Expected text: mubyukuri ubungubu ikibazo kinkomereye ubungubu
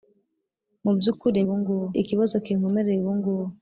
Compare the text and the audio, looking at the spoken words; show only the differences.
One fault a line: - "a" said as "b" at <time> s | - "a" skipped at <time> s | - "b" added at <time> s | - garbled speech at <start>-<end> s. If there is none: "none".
none